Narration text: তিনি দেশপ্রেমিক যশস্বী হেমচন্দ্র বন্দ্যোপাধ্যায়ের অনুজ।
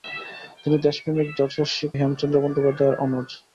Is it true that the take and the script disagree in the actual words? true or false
false